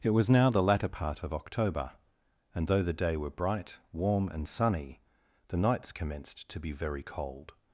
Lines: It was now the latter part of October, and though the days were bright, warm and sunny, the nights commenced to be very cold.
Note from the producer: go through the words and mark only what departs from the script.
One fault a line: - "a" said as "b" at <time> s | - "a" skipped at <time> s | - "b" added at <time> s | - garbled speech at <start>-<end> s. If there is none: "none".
- "days" said as "day" at 2.9 s